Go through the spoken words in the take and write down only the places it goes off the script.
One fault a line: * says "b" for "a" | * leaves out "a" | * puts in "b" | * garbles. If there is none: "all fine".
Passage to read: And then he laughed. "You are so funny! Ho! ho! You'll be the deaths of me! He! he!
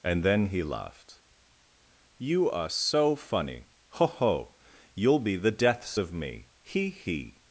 all fine